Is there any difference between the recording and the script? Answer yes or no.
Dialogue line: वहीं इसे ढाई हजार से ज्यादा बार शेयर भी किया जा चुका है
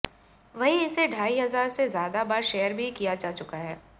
no